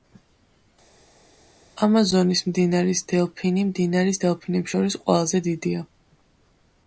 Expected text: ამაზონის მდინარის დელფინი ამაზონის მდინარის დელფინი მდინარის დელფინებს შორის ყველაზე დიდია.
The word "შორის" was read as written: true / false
true